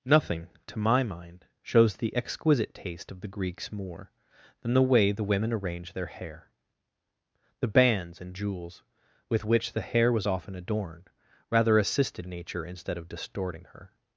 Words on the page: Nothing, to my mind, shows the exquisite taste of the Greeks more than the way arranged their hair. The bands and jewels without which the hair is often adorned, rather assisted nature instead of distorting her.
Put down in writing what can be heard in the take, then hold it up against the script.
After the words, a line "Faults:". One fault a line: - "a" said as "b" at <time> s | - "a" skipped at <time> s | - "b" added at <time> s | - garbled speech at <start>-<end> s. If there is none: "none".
Nothing, to my mind, shows the exquisite taste of the Greeks more than the way the women arranged their hair. The bands and jewels with which the hair was often adorned, rather assisted nature instead of distorting her.
Faults:
- "the women" added at 5.1 s
- "without" said as "with" at 9.3 s
- "is" said as "was" at 10.1 s